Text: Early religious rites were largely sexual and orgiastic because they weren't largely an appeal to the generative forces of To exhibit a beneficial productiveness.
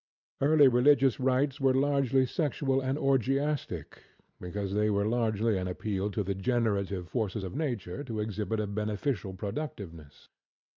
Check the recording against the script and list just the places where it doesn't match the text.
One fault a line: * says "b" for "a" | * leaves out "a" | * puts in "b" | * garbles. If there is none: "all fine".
* says "were" for "weren't"
* puts in "Nature"